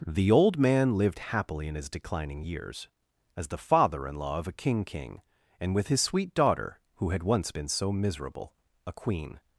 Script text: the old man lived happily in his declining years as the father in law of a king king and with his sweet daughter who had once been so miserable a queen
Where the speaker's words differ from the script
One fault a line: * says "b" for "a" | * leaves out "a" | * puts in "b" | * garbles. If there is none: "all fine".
all fine